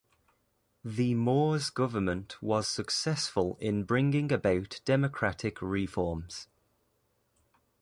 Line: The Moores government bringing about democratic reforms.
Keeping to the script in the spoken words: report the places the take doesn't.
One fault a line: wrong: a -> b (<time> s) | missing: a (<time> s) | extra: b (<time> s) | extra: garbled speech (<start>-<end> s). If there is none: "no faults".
extra: was successful in (2.4 s)